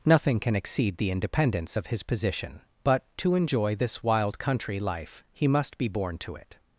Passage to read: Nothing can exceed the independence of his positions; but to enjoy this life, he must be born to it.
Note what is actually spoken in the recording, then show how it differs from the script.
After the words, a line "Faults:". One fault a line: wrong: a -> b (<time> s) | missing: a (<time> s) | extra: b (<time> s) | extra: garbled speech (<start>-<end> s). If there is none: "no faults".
Nothing can exceed the independence of his position; but to enjoy this wild country life, he must be born to it.
Faults:
wrong: positions -> position (2.0 s)
extra: wild country (4.0 s)